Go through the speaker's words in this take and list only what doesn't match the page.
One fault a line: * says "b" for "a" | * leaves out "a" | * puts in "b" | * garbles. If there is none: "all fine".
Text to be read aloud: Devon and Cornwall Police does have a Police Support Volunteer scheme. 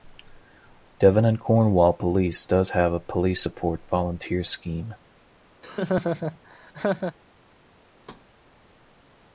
all fine